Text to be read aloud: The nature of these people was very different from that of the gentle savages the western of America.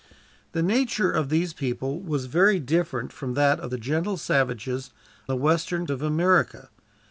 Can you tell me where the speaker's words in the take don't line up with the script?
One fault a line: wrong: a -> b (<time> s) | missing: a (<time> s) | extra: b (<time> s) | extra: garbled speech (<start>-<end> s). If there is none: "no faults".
no faults